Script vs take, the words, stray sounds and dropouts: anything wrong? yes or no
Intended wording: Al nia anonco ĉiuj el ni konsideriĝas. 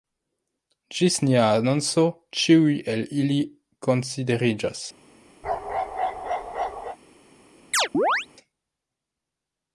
yes